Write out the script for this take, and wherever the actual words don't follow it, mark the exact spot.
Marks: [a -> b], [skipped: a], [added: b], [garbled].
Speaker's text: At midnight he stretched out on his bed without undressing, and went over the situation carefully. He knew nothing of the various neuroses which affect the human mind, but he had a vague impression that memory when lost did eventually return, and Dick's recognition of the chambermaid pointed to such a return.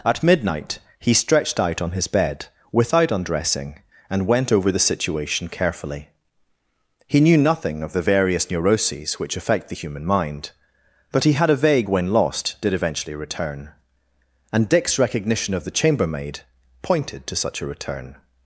At midnight he stretched out on his bed without undressing, and went over the situation carefully. He knew nothing of the various neuroses which affect the human mind, but he had a vague [skipped: impression that memory] when lost did eventually return, and Dick's recognition of the chambermaid pointed to such a return.